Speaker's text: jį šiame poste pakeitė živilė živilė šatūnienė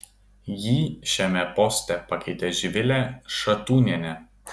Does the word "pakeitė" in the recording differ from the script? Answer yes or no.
no